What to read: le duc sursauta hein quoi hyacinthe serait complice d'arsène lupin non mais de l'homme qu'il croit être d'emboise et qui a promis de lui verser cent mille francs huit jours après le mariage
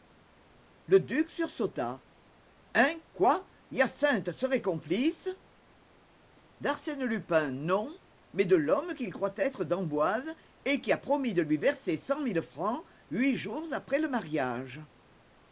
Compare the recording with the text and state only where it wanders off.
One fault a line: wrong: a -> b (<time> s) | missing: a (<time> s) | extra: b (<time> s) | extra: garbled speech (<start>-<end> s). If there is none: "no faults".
no faults